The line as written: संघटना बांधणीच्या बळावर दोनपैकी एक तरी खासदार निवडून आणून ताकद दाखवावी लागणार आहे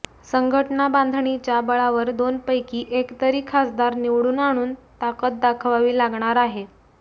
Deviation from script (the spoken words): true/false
false